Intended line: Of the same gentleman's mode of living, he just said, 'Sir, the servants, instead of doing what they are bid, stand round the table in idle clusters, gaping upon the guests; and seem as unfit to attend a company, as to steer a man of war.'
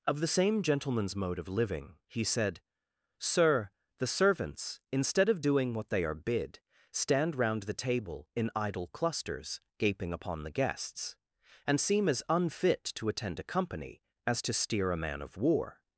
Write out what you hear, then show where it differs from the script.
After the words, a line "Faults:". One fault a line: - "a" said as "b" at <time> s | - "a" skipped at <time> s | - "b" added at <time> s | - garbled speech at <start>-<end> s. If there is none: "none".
Of the same gentleman's mode of living, he said, 'Sir, the servants, instead of doing what they are bid, stand round the table in idle clusters, gaping upon the guests; and seem as unfit to attend a company, as to steer a man of war.'
Faults:
- "just" skipped at 2.2 s